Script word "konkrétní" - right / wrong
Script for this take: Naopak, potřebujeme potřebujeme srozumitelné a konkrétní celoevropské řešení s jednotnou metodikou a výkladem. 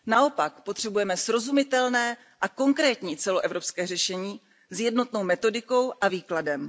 right